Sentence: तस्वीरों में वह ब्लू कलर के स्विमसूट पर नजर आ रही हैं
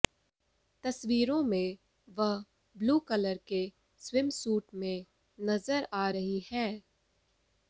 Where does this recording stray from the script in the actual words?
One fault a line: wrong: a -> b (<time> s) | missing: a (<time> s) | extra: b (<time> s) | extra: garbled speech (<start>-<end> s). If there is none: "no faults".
wrong: पर -> में (4.8 s)